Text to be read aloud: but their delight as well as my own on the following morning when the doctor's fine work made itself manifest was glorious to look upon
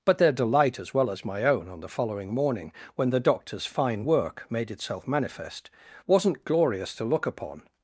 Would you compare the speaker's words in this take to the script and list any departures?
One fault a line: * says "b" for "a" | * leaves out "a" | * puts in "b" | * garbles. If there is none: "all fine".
* says "wasn't" for "was"